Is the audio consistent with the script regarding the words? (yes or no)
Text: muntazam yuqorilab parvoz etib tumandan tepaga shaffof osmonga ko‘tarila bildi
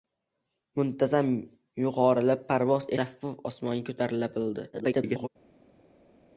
no